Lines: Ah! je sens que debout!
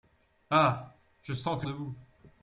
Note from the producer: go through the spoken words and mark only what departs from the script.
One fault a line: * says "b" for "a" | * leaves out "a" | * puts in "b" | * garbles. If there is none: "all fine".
all fine